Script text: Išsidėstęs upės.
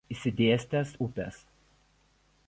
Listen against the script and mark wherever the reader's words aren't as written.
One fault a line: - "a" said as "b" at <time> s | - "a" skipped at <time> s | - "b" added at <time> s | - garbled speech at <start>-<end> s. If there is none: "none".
none